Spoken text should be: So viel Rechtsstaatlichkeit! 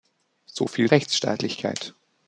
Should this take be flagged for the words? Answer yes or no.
no